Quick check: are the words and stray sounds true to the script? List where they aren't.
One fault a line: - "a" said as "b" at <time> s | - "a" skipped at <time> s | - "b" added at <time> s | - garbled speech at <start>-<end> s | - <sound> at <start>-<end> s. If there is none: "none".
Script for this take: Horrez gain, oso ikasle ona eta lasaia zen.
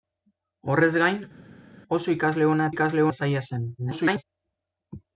- "eta" said as "ikasle" at 2.7 s
- garbled speech at 3.8-4.2 s